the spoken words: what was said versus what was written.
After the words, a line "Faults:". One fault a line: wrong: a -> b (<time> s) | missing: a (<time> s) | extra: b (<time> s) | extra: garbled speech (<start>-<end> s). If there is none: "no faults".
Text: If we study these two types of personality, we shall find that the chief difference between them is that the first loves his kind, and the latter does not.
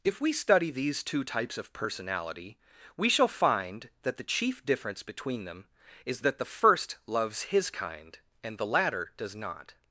If we study these two types of personality, we shall find that the chief difference between them is that the first loves his kind, and the latter does not.
Faults:
no faults